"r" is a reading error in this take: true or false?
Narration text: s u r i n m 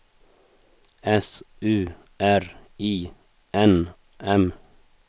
false